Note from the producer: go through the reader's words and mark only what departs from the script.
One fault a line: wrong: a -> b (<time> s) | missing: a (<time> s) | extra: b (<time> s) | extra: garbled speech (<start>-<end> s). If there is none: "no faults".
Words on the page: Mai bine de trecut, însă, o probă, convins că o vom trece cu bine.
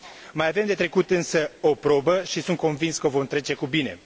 wrong: bine -> avem (0.5 s)
extra: și sunt (2.2 s)